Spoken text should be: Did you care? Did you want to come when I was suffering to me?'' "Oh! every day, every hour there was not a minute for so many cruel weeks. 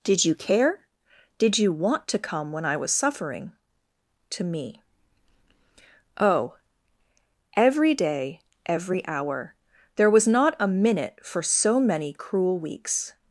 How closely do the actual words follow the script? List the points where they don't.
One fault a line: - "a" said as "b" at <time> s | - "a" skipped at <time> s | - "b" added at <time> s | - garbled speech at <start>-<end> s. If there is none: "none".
none